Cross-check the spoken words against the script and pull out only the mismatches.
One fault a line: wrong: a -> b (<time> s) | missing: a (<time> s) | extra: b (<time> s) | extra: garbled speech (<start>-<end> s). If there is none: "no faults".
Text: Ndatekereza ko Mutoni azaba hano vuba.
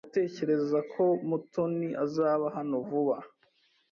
no faults